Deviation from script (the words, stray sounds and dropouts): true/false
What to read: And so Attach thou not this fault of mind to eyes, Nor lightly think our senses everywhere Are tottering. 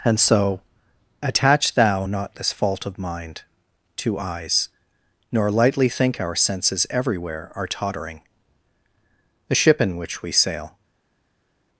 true